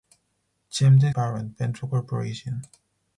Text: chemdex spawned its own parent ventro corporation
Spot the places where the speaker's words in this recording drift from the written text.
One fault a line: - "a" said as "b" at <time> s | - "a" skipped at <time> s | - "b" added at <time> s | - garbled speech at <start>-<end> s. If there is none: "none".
- "spawned its own" skipped at 1.1 s